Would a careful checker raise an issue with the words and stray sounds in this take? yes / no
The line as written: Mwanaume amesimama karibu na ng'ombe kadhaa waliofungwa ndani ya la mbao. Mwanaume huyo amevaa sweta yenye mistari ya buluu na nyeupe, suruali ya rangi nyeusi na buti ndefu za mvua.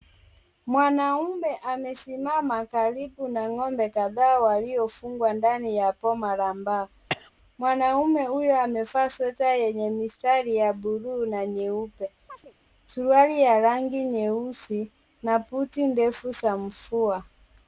yes